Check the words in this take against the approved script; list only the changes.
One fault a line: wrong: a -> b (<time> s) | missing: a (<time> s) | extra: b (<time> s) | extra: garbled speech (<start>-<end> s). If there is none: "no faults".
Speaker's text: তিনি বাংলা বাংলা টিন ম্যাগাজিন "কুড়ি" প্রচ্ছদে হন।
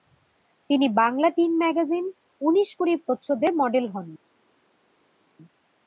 missing: বাংলা (1.3 s)
extra: উনিশ (2.4 s)
extra: মডেল (3.6 s)